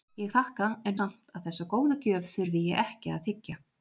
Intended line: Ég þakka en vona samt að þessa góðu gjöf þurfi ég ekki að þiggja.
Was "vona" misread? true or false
true